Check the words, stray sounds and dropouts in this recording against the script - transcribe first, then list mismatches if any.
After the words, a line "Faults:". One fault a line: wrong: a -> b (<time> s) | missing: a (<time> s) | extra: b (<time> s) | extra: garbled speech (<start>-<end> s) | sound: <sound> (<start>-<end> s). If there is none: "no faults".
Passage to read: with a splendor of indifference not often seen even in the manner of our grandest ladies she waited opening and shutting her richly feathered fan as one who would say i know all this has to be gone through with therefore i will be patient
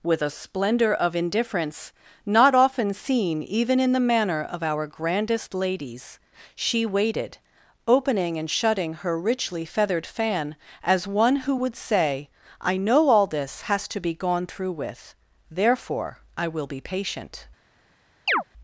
with a splendor of indifference not often seen even in the manner of our grandest ladies she waited opening and shutting her richly feathered fan as one who would say i know all this has to be gone through with therefore i will be patient
Faults:
sound: chirp (18.3-18.4 s)